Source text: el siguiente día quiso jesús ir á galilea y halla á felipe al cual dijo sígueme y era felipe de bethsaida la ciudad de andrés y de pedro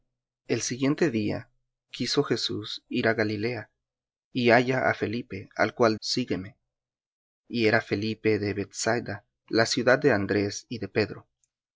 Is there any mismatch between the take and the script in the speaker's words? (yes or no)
yes